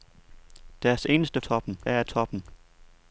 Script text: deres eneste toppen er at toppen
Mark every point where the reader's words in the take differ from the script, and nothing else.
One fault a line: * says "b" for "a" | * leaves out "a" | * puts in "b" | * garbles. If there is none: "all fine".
all fine